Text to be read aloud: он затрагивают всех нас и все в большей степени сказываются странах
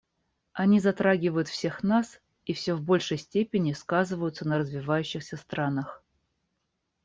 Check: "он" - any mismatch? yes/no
yes